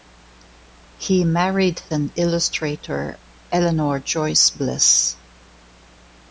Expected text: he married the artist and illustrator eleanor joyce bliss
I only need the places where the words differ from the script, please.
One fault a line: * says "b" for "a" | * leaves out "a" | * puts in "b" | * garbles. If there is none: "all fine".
* leaves out "the artist"